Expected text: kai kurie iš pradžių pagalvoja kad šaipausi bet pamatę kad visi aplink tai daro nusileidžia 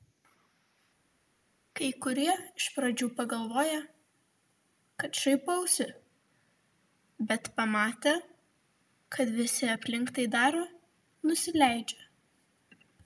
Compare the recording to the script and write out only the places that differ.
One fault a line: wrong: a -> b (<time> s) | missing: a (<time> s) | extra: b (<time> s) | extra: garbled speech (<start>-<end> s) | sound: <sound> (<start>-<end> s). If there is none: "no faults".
no faults